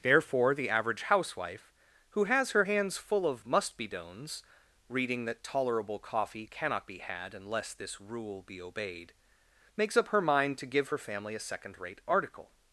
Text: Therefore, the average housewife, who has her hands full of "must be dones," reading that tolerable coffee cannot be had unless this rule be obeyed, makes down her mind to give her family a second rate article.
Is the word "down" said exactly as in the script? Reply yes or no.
no